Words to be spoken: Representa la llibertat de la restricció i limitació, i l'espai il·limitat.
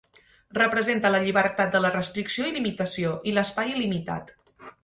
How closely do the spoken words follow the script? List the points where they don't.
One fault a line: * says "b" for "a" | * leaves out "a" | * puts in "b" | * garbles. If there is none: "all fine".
all fine